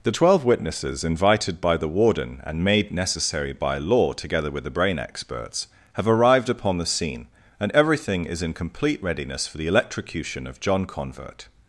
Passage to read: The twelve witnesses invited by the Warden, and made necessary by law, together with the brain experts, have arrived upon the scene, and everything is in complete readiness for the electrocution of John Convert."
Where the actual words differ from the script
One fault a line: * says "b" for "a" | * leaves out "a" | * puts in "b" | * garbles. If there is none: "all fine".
all fine